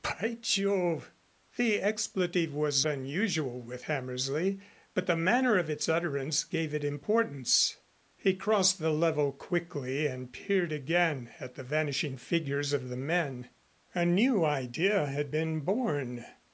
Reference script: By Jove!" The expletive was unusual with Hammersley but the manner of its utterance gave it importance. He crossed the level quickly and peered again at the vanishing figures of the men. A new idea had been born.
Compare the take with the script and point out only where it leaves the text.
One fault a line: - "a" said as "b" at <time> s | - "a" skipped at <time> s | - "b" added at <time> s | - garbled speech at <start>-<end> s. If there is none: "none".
none